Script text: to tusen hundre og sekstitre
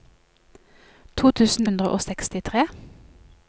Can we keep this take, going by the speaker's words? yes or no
yes